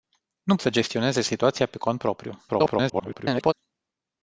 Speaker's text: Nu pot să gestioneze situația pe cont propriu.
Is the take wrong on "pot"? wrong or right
wrong